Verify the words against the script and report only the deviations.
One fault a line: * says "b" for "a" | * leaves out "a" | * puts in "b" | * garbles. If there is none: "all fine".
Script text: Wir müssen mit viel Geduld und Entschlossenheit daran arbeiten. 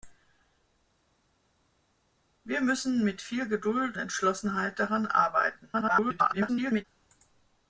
* leaves out "und"
* garbles